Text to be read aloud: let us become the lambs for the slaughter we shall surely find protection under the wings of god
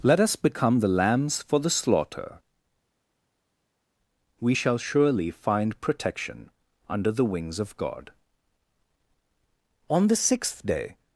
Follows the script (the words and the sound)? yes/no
no